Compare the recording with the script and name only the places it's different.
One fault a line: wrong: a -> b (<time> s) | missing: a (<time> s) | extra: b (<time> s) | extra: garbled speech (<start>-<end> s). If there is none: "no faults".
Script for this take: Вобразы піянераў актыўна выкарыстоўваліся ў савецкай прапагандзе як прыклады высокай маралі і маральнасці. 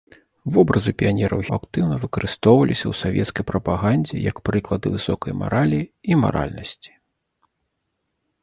no faults